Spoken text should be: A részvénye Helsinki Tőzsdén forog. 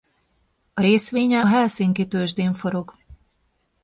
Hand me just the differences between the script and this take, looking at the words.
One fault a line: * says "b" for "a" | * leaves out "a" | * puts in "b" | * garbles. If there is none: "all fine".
all fine